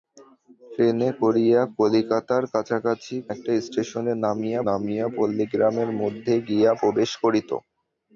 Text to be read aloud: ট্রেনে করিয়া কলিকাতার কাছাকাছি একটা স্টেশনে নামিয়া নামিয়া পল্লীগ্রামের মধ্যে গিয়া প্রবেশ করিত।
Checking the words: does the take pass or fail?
pass